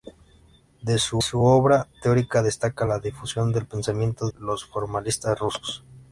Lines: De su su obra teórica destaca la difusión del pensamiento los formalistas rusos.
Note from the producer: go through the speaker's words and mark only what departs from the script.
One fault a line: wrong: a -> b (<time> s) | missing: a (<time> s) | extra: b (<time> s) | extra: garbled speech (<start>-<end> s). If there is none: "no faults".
no faults